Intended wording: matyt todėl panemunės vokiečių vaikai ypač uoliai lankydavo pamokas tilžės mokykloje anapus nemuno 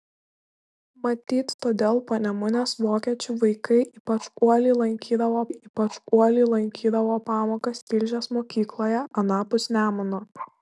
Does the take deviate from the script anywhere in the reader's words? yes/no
yes